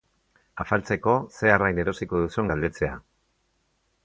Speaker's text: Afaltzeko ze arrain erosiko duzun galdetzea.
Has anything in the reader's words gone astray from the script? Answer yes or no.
no